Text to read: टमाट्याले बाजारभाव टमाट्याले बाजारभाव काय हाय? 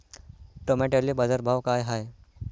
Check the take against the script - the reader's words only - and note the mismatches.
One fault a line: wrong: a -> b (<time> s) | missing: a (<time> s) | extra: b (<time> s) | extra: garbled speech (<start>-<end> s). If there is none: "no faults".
missing: टमाट्याले बाजारभाव (1.6 s)